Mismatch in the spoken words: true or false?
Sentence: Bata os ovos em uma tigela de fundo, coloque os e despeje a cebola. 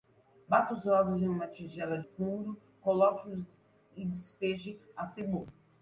true